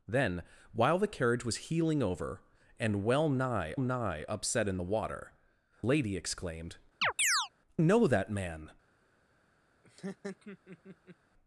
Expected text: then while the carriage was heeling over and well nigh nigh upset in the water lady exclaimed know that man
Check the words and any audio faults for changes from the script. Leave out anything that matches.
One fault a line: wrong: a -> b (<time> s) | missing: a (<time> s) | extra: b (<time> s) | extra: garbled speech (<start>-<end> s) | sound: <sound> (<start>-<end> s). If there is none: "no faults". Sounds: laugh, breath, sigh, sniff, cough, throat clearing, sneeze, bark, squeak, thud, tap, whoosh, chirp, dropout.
sound: chirp (7.0-7.5 s)
sound: laugh (9.8-11.2 s)